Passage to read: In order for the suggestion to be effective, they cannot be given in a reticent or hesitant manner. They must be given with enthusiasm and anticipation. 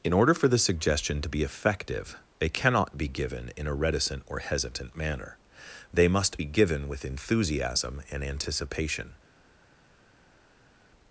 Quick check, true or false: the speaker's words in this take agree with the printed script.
true